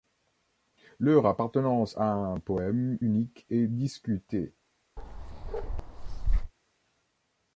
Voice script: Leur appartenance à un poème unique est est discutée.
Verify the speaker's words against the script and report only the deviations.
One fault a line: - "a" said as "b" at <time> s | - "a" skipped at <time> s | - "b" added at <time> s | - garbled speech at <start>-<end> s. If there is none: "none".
- "est" skipped at 3.7 s